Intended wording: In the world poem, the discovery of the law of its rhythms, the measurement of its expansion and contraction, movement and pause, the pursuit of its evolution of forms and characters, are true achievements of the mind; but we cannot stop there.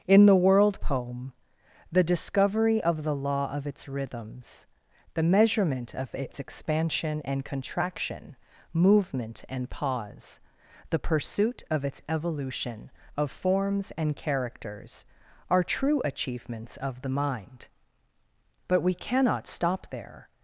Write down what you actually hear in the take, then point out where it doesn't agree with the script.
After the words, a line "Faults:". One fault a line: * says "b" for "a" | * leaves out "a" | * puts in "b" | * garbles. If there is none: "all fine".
In the world poem, the discovery of the law of its rhythms, the measurement of its expansion and contraction, movement and pause, the pursuit of its evolution of forms and characters, are true achievements of the mind; but we cannot stop there.
Faults:
all fine